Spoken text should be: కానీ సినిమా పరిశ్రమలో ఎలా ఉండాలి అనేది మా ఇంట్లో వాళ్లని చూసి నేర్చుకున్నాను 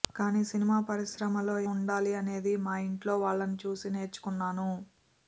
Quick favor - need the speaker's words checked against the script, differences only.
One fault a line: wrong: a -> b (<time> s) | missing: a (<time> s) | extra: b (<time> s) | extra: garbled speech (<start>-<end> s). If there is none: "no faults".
missing: ఎలా (1.6 s)